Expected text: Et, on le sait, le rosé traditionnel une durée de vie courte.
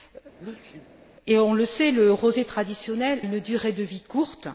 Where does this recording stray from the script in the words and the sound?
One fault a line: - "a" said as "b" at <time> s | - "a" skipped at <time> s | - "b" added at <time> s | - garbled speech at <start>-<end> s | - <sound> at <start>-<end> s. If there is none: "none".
- sneeze at 0.4-0.9 s